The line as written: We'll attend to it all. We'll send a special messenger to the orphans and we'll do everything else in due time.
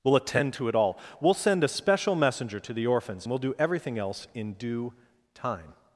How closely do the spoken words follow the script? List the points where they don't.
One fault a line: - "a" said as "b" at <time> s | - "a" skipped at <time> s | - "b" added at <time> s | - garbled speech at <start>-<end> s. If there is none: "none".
- "and" skipped at 3.3 s